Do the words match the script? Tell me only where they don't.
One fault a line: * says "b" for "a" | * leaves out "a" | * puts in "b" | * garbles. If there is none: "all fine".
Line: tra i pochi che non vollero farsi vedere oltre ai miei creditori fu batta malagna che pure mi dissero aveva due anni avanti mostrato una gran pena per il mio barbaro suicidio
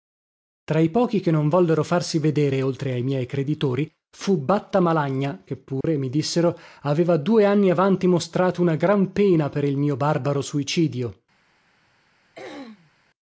all fine